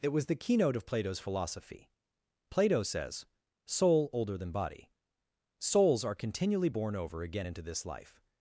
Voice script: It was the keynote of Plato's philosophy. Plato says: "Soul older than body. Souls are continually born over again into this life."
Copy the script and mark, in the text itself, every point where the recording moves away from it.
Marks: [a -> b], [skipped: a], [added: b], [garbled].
It was the keynote of Plato's philosophy. Plato says: "Soul older than body. Souls are continually born over again into this life."